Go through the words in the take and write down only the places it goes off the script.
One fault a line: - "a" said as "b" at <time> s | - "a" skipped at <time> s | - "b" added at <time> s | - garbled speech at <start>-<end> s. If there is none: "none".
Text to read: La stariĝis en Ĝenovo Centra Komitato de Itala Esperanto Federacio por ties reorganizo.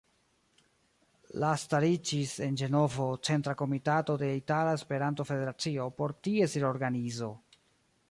none